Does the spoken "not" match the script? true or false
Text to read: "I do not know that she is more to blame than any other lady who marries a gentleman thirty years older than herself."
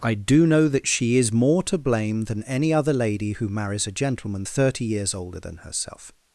false